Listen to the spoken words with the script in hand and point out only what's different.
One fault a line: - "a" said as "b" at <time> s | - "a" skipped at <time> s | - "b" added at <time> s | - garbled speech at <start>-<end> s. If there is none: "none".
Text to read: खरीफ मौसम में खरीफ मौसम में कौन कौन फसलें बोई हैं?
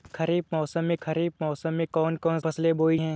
none